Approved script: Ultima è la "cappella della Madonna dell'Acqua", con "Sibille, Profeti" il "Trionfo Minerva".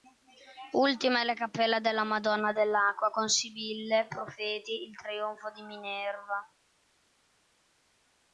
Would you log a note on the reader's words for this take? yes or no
yes